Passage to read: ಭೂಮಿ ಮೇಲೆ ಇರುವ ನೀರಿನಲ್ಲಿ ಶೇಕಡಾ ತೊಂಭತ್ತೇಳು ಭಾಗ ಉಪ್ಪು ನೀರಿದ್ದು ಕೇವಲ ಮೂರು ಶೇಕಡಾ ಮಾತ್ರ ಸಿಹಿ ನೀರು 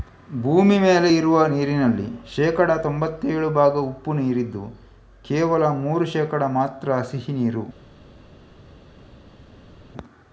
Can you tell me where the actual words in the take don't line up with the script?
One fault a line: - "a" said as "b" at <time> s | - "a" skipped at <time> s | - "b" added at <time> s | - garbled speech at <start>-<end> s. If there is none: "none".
none